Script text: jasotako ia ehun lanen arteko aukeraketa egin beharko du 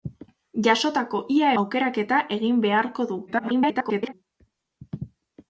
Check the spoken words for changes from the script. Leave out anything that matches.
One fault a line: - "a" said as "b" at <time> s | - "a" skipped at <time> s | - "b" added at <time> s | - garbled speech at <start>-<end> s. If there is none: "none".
- "ehun lanen arteko" skipped at 1.5 s
- garbled speech at 3.3-4.1 s